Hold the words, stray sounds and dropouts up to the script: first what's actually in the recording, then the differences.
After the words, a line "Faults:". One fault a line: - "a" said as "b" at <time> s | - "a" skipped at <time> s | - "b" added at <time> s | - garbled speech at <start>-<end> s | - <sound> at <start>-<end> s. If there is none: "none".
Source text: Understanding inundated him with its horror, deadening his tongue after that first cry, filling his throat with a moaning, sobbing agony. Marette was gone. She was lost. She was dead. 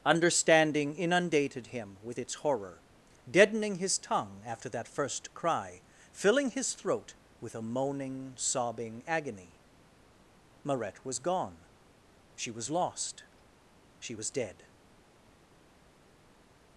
Understanding inundated him with its horror, deadening his tongue after that first cry, filling his throat with a moaning, sobbing agony. Marette was gone. She was lost. She was dead.
Faults:
none